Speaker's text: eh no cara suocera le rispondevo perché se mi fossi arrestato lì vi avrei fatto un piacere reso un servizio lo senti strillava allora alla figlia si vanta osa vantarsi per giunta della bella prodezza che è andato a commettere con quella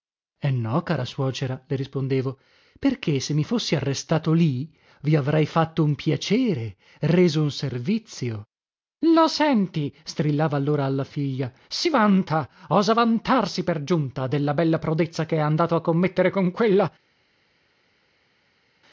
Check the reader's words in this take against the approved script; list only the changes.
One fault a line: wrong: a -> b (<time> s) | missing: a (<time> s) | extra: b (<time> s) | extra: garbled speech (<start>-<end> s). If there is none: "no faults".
no faults